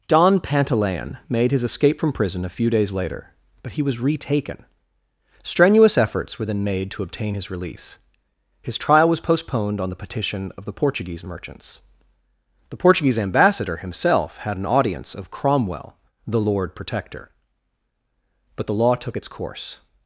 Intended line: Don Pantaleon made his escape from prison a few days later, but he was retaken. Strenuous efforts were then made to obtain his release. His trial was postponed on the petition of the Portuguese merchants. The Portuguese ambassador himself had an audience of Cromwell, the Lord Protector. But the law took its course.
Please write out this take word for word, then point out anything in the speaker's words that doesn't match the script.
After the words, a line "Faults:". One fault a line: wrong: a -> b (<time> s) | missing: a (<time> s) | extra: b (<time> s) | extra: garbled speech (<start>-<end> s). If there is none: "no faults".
Don Pantaleon made his escape from prison a few days later, but he was retaken. Strenuous efforts were then made to obtain his release. His trial was postponed on the petition of the Portuguese merchants. The Portuguese ambassador himself had an audience of Cromwell, the Lord Protector. But the law took its course.
Faults:
no faults